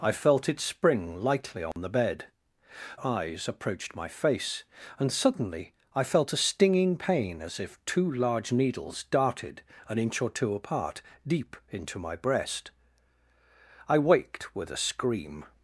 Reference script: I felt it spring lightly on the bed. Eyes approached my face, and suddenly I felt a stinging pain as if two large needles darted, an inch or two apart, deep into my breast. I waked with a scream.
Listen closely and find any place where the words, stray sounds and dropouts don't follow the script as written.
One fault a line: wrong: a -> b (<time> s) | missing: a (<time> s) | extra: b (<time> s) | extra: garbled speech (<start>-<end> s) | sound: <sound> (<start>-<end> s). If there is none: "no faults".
sound: dropout (1.7-1.8 s)